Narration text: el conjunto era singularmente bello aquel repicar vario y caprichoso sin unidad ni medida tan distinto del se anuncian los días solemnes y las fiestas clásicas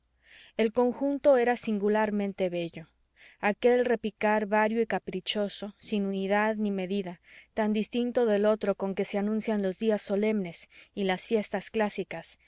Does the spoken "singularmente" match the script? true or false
true